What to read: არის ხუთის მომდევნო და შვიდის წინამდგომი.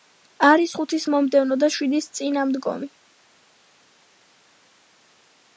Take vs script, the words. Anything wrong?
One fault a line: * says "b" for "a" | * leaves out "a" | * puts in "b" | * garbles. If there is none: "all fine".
all fine